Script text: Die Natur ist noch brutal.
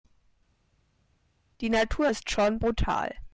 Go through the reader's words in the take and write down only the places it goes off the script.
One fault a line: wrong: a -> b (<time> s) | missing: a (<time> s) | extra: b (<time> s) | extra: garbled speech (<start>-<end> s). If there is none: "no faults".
wrong: noch -> schon (2.3 s)